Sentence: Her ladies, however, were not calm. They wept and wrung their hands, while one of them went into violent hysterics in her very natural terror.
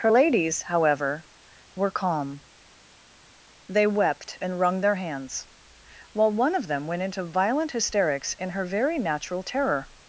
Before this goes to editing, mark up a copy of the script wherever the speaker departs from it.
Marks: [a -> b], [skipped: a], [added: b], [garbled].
Her ladies, however, were [skipped: not] calm. They wept and wrung their hands, while one of them went into violent hysterics in her very natural terror.